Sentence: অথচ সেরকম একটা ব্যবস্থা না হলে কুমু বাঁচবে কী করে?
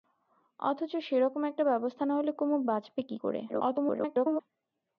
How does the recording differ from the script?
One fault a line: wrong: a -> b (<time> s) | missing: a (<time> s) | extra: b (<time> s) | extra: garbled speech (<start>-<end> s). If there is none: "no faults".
extra: garbled speech (3.5-4.4 s)